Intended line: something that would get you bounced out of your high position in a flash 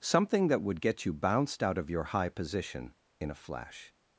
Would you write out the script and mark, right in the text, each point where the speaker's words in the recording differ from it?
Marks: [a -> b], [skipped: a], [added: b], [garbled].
something that would get you bounced out of your high position in a flash